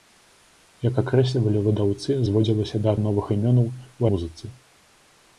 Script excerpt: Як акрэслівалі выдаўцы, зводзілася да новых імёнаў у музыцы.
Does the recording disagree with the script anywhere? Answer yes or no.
no